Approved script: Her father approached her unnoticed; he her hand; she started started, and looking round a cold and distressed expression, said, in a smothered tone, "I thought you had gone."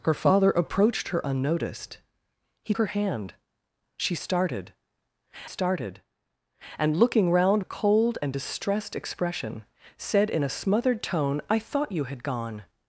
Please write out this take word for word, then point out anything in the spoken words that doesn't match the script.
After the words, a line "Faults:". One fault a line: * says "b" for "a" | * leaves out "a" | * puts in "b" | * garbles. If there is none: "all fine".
Her father approached her unnoticed; he her hand; she started started, and looking round a cold and distressed expression, said, in a smothered tone, "I thought you had gone."
Faults:
all fine